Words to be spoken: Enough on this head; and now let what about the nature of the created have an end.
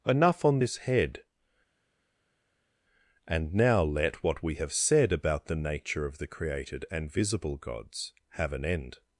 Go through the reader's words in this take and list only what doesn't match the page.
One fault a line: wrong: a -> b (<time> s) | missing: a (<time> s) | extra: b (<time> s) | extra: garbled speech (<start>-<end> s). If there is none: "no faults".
extra: we have said (4.4 s)
extra: and visible gods (6.9 s)